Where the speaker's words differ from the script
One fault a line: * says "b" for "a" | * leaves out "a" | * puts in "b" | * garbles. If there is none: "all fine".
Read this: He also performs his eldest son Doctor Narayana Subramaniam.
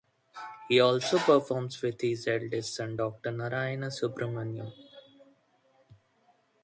* puts in "with"